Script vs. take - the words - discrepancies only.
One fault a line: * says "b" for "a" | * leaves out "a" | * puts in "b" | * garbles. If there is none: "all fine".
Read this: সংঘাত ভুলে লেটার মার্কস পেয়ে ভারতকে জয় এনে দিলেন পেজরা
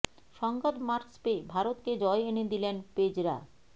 * leaves out "ভুলে লেটার"